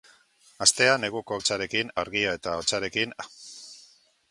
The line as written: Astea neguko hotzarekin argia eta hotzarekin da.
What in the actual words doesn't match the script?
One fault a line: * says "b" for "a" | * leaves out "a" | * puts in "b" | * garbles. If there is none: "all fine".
all fine